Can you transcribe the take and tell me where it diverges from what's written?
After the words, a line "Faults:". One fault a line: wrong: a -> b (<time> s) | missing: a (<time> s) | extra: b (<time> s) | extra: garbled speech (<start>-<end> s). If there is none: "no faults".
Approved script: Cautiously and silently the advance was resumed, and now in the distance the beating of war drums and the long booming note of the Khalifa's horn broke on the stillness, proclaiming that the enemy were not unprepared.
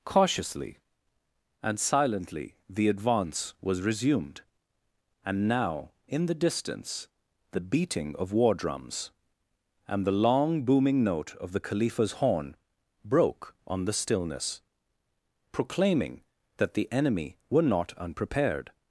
Cautiously and silently the advance was resumed, and now in the distance the beating of war drums and the long booming note of the Khalifa's horn broke on the stillness, proclaiming that the enemy were not unprepared.
Faults:
no faults